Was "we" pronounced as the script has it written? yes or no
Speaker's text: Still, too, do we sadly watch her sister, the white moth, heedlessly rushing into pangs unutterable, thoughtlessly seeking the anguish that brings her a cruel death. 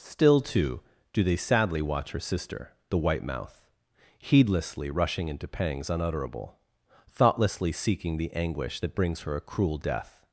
no